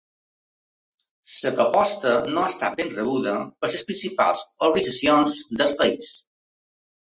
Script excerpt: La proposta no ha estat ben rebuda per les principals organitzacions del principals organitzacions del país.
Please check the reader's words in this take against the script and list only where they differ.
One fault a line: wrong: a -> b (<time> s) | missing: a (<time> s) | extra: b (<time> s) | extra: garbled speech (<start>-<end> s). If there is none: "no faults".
missing: principals organitzacions del (5.8 s)